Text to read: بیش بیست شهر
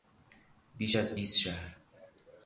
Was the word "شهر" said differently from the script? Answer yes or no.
no